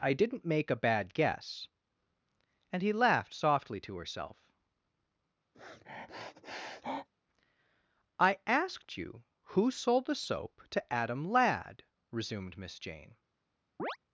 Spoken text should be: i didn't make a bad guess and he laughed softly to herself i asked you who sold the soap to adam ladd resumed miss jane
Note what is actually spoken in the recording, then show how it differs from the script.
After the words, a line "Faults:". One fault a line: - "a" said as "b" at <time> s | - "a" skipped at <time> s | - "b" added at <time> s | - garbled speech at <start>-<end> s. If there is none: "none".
i didn't make a bad guess and he laughed softly to herself i asked you who sold the soap to adam ladd resumed miss jane
Faults:
none